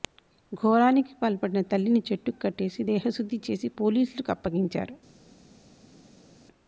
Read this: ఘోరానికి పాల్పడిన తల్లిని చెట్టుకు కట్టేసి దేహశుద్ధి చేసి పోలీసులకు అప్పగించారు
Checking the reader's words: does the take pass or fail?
pass